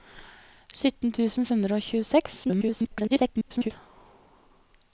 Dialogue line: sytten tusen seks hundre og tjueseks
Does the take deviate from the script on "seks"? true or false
true